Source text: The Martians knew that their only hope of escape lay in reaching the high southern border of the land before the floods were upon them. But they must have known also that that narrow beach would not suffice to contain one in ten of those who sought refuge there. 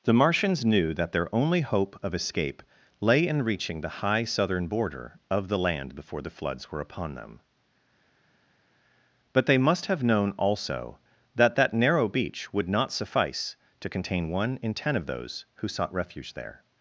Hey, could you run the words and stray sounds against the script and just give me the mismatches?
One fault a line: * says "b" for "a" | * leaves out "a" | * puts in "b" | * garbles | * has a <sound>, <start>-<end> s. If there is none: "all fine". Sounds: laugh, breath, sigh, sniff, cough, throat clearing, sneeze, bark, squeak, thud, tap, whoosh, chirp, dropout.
all fine